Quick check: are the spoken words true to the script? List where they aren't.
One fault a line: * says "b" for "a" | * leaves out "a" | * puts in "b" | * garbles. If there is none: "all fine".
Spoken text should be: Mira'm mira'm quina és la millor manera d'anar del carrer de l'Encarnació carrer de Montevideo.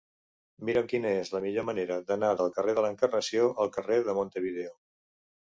* leaves out "mira'm"
* puts in "al"